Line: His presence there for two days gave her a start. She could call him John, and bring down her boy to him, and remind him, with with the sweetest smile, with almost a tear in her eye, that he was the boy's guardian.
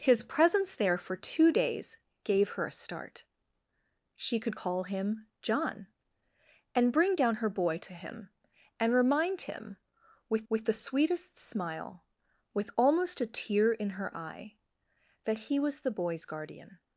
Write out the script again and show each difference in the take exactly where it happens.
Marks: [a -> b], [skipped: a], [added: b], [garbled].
His presence there for two days gave her a start. She could call him John, and bring down her boy to him, and remind him, with with the sweetest smile, with almost a tear in her eye, that he was the boy's guardian.